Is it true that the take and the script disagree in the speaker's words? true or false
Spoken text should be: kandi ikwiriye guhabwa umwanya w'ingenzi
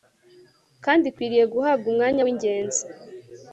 false